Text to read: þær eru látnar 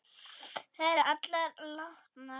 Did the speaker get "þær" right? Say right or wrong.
right